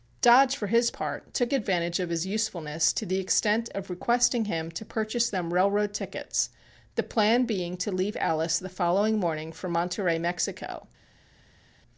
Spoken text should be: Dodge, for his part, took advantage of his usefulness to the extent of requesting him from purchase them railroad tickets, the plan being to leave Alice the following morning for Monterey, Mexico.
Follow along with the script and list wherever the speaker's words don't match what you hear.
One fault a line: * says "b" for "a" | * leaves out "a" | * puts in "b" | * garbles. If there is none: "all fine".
* says "to" for "from"